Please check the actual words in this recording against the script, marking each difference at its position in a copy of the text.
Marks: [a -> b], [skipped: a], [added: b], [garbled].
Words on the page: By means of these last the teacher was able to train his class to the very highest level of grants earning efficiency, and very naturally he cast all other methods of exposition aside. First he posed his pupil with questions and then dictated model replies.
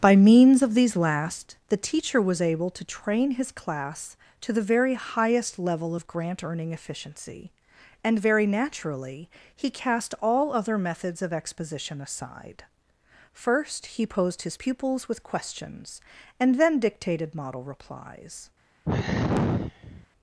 By means of these last the teacher was able to train his class to the very highest level of [grants -> grant] earning efficiency, and very naturally he cast all other methods of exposition aside. First he posed his [pupil -> pupils] with questions and then dictated model replies.